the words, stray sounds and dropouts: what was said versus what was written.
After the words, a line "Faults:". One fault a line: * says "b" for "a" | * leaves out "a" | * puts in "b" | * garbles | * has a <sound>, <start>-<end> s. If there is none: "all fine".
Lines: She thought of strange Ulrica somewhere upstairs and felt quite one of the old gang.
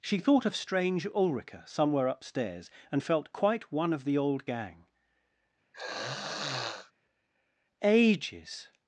She thought of strange Ulrica somewhere upstairs and felt quite one of the old gang. "Ages
Faults:
* has a throat clearing, 5.7-6.9 s
* puts in "Ages"